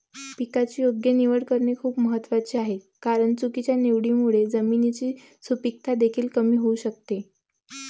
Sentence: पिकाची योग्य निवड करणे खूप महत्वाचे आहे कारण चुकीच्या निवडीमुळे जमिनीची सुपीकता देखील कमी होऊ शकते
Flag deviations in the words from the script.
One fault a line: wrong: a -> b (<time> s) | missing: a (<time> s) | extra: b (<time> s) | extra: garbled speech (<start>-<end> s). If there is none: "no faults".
no faults